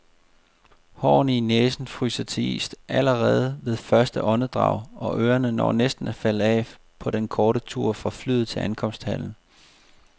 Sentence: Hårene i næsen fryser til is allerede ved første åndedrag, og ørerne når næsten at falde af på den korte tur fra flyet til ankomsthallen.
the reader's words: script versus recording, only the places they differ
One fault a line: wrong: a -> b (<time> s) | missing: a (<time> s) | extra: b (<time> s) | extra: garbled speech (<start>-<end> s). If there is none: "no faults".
no faults